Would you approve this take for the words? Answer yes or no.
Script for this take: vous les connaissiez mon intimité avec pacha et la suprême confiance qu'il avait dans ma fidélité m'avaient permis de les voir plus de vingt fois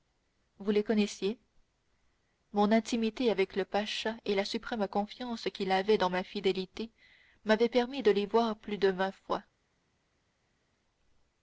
no